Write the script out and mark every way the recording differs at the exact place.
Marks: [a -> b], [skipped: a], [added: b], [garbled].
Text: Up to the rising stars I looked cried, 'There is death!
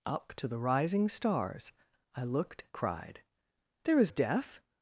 Up to the rising stars I looked cried, 'There is death!